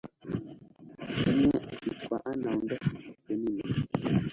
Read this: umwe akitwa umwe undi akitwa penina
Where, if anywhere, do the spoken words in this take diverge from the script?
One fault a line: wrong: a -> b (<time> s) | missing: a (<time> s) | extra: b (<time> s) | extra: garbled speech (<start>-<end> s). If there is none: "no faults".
wrong: umwe -> ana (2.3 s)